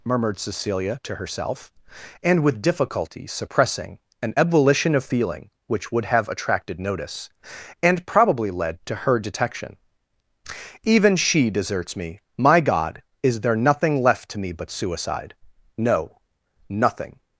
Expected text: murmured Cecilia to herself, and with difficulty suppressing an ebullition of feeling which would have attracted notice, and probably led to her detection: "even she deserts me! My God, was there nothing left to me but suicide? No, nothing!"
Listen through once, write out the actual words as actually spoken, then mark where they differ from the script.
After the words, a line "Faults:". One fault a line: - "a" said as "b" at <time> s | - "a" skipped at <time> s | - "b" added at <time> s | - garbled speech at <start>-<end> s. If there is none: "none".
murmured Cecilia to herself, and with difficulty suppressing an ebullition of feeling which would have attracted notice, and probably led to her detection: "even she deserts me! My God, is there nothing left to me but suicide? No, nothing!"
Faults:
- "was" said as "is" at 13.2 s